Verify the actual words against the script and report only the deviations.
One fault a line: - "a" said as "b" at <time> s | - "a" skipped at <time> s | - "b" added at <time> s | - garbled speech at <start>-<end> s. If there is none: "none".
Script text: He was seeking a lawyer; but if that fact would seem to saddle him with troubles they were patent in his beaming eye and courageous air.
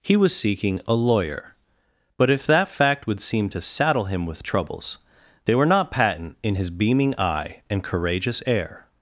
- "not" added at 5.7 s